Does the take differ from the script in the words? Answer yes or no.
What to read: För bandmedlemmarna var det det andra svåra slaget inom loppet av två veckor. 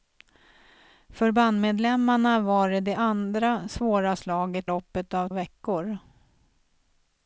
yes